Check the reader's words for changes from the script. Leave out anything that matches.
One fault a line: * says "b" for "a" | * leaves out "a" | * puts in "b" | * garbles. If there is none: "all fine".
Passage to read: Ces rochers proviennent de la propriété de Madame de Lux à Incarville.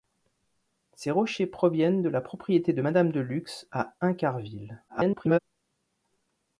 * garbles